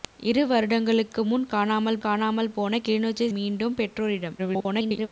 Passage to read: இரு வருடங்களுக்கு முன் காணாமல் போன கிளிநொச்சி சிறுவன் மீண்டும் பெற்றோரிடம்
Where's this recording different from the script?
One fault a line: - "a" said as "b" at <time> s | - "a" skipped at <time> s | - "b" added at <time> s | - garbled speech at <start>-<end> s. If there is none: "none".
- "காணாமல்" added at 2.0 s
- "சிறுவன்" skipped at 3.3 s
- garbled speech at 4.4-5.1 s